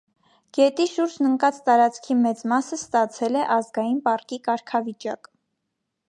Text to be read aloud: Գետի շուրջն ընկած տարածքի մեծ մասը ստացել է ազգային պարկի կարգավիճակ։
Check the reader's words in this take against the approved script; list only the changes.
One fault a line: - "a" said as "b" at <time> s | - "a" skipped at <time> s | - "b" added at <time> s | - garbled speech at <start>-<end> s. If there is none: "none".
none